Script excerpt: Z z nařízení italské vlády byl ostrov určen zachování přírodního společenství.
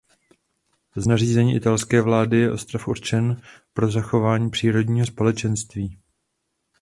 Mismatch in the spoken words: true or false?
true